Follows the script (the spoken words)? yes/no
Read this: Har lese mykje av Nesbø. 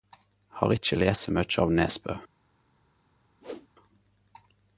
no